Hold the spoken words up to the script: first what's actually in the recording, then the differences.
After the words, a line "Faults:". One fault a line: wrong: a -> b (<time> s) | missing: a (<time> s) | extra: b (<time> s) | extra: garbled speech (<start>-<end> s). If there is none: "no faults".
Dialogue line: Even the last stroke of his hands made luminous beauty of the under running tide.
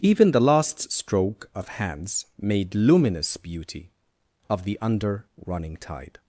Even the last stroke of hands made luminous beauty of the under running tide.
Faults:
missing: his (1.7 s)